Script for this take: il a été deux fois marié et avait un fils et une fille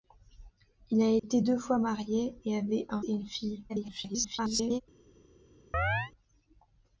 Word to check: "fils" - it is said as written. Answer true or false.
false